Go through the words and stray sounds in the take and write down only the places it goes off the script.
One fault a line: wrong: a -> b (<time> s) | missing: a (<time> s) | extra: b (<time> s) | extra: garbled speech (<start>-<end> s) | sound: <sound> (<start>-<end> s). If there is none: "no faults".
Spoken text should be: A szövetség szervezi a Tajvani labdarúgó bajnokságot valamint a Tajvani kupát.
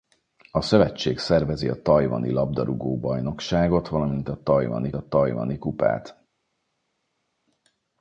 extra: a Tajvani (4.9 s)